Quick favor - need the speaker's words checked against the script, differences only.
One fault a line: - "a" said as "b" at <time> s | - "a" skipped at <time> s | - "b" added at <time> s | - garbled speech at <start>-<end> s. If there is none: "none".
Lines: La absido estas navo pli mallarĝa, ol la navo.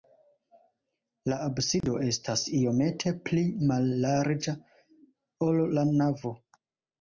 - "navo" said as "iomete" at 2.6 s